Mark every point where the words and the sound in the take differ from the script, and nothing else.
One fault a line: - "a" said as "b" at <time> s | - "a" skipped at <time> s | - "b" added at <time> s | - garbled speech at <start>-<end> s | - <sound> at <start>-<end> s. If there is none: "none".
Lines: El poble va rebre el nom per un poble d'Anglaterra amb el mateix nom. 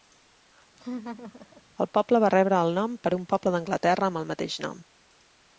- laugh at 0.8-1.6 s